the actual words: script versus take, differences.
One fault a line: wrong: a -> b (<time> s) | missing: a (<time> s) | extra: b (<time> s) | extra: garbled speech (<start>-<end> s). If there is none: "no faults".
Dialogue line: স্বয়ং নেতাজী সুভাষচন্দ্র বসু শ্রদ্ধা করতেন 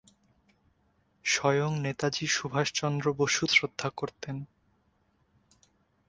no faults